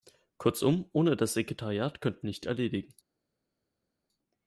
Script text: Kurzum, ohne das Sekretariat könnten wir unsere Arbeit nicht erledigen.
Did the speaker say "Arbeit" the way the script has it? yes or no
no